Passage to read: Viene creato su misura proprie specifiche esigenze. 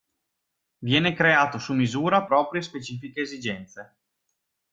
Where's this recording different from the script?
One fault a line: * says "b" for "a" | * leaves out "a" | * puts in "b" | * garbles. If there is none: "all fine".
all fine